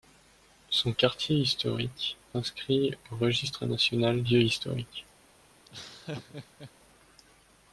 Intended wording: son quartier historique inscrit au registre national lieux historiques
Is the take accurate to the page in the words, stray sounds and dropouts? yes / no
no